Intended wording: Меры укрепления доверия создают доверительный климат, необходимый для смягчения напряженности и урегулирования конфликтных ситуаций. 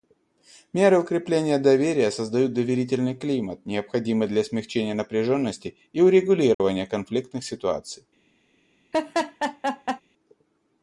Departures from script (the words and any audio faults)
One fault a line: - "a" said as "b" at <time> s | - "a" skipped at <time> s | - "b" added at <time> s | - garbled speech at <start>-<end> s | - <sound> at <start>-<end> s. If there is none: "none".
- dropout at 6.5-6.6 s
- laugh at 8.9-10.0 s